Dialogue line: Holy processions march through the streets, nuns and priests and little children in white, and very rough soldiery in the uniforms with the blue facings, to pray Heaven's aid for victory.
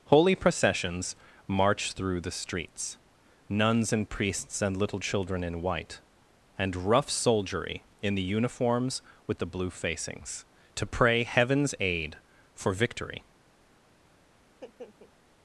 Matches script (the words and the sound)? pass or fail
fail